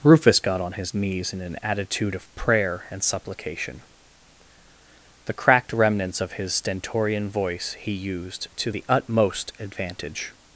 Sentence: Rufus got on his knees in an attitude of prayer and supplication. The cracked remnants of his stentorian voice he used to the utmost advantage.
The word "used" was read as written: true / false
true